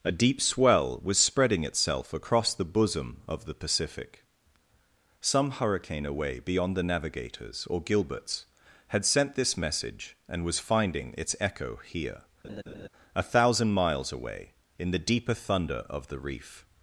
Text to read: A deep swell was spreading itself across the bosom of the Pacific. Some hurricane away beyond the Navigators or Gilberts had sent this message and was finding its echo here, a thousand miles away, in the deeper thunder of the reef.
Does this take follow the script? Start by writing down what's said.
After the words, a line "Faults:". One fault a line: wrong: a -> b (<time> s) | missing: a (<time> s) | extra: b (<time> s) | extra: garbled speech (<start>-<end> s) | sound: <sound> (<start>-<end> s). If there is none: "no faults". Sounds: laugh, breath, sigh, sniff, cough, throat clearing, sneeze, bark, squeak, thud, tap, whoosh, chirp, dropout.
A deep swell was spreading itself across the bosom of the Pacific. Some hurricane away beyond the Navigators or Gilberts had sent this message and was finding its echo here, a thousand miles away, in the deeper thunder of the reef.
Faults:
sound: laugh (12.4-12.9 s)